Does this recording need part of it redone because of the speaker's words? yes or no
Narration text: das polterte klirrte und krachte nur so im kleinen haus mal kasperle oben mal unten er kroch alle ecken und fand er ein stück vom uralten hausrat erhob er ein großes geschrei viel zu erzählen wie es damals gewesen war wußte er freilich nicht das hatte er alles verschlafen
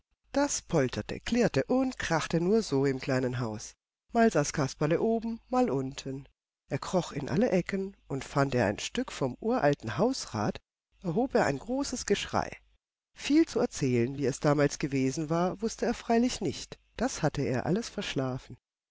yes